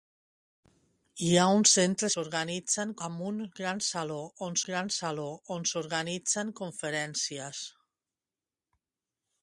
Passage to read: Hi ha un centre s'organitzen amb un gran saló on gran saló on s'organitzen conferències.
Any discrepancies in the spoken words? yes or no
no